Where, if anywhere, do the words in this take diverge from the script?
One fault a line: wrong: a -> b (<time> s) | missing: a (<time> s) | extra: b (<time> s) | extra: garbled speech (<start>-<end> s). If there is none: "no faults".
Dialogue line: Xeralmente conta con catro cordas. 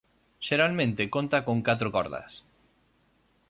no faults